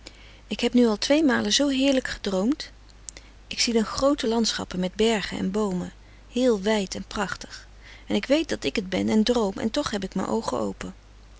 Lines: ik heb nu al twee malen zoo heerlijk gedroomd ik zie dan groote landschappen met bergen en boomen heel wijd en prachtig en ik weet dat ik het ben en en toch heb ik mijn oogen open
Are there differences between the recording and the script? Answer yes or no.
yes